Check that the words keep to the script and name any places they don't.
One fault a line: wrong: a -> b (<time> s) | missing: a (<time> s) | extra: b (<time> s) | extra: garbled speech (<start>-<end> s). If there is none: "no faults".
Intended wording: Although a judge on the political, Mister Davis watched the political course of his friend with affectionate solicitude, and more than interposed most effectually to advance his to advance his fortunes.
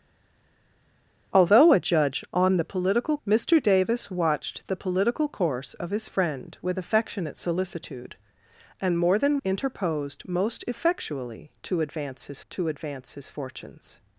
no faults